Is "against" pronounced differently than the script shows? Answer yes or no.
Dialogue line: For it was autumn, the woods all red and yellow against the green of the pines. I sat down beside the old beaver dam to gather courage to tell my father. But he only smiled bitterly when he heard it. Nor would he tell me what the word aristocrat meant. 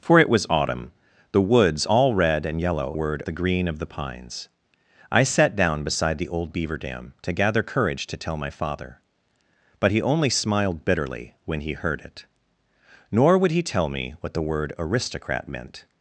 yes